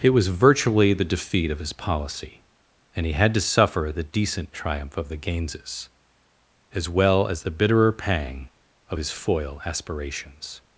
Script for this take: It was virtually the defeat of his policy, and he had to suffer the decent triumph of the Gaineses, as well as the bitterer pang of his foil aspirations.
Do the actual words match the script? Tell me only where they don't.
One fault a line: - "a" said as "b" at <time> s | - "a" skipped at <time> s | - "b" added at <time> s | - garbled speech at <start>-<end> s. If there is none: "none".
none